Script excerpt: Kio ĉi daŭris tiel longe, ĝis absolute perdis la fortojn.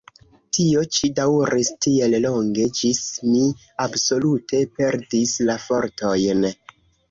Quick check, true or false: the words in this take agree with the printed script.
false